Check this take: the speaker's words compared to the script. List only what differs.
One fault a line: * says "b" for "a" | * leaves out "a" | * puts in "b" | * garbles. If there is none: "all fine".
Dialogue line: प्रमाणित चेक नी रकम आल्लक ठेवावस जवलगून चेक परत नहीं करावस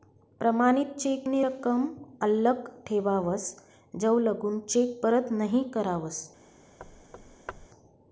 all fine